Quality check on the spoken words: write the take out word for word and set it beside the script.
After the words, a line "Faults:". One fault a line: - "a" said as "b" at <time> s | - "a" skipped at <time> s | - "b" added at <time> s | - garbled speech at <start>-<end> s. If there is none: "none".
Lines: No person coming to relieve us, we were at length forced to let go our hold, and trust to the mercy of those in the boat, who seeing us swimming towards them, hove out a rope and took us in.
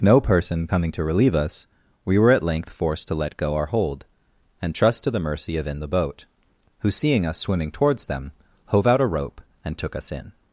No person coming to relieve us, we were at length forced to let go our hold, and trust to the mercy of in the boat, who seeing us swimming towards them, hove out a rope and took us in.
Faults:
- "those" skipped at 5.7 s